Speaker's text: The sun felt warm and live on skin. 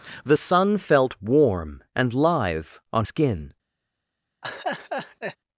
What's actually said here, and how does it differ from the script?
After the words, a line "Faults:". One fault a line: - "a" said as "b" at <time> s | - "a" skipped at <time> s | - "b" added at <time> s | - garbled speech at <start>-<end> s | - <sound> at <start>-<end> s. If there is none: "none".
The sun felt warm and live on skin.
Faults:
- laugh at 4.4-5.4 s